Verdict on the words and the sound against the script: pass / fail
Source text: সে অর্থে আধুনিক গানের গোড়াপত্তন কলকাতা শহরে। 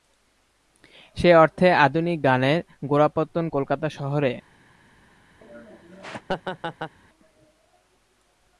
fail